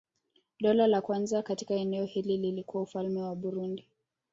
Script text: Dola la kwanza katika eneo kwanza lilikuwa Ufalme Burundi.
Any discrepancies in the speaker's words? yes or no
yes